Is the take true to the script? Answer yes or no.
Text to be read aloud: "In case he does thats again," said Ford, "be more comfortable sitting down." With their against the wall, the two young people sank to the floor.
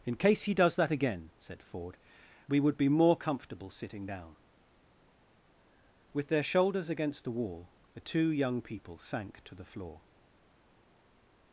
no